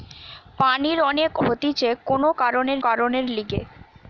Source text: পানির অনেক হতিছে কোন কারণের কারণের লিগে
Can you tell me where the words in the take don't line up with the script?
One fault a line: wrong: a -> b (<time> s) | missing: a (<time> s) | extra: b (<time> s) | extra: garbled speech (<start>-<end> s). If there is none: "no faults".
no faults